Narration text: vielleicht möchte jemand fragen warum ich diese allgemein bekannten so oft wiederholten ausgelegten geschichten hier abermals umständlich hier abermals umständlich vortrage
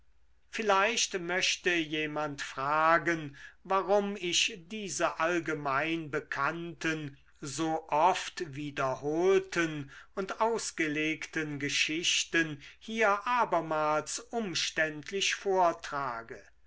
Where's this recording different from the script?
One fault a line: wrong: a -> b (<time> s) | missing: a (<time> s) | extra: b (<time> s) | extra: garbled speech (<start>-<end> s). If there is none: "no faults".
extra: und (10.1 s)
missing: hier abermals umständlich (15.3 s)